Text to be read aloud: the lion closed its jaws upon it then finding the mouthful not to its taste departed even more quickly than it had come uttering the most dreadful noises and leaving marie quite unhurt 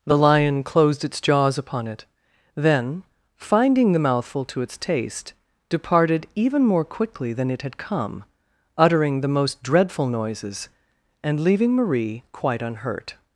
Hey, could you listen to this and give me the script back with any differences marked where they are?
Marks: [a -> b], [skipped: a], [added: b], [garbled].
the lion closed its jaws upon it then finding the mouthful [skipped: not] to its taste departed even more quickly than it had come uttering the most dreadful noises and leaving marie quite unhurt